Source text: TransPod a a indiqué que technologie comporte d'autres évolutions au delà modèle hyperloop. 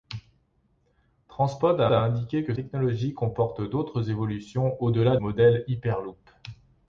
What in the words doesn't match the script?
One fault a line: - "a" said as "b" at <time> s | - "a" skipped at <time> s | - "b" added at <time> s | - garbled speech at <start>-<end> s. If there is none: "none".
none